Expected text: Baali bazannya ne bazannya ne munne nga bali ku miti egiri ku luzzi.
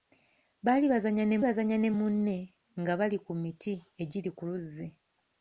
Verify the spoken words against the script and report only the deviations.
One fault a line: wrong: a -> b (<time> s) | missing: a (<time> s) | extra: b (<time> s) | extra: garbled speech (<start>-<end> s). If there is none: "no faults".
no faults